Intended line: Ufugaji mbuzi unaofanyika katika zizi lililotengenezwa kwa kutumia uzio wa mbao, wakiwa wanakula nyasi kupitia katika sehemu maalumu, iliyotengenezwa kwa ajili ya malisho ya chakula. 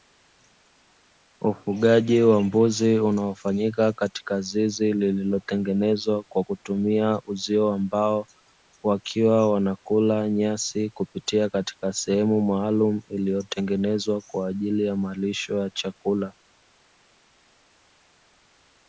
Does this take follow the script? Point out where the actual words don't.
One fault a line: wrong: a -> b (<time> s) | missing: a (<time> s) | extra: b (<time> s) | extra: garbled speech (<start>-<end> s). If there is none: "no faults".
extra: wa (2.2 s)